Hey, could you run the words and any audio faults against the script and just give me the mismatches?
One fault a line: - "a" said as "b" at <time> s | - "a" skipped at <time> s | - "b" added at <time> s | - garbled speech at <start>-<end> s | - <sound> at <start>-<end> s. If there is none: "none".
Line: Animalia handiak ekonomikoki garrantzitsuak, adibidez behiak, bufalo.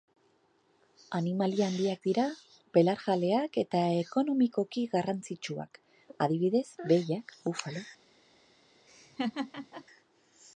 - "dira belarjaleak eta" added at 2.1 s
- laugh at 8.9-9.8 s